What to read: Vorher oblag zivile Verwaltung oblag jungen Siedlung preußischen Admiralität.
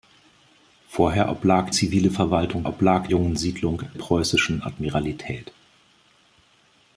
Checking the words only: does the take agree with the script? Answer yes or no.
yes